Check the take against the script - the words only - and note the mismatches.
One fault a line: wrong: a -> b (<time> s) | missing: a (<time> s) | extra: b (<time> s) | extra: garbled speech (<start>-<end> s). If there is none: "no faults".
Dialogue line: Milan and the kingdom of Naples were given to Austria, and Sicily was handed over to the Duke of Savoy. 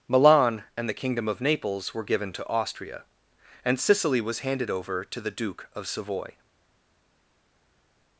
no faults